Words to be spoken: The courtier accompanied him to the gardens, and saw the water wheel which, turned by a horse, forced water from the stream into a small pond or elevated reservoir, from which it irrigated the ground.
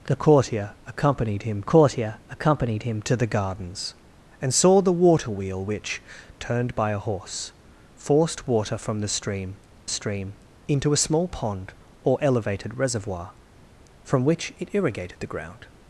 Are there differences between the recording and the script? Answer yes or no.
yes